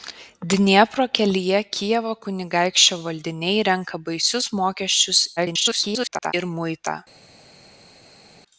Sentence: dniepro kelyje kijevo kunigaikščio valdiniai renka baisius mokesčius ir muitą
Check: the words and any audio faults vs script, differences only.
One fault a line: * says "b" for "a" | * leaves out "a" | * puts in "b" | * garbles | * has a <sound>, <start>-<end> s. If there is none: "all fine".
* garbles